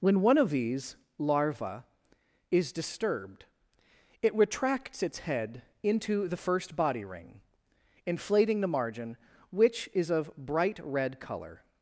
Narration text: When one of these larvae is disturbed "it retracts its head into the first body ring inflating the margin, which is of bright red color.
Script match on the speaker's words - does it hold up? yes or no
yes